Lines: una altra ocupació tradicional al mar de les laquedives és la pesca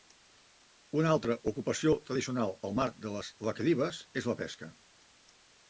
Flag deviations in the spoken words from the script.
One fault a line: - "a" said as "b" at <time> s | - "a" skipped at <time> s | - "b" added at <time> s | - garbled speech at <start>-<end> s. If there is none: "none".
none